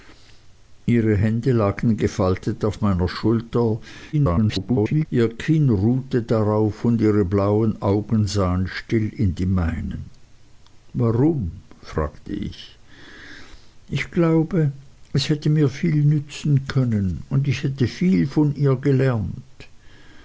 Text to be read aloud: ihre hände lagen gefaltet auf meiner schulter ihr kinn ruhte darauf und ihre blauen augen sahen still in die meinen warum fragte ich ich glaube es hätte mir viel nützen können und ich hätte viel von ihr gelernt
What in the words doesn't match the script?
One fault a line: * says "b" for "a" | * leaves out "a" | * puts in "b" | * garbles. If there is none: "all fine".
* garbles